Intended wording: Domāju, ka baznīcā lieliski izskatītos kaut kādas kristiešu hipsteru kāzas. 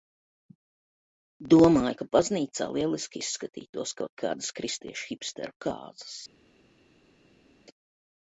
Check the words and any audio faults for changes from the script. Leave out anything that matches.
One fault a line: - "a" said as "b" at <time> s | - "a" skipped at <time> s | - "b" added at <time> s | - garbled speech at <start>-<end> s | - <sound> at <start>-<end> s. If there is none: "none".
none